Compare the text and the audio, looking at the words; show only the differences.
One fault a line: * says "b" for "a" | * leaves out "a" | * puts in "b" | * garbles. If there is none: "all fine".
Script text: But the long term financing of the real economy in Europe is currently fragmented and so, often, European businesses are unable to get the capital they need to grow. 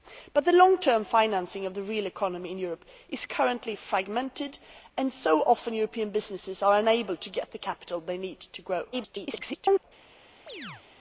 * garbles